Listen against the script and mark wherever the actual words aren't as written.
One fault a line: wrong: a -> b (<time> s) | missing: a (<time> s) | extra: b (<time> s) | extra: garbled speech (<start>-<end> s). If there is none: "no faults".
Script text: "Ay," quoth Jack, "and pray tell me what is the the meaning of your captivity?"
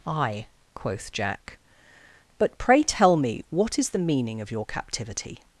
wrong: and -> but (2.4 s)
missing: the (4.0 s)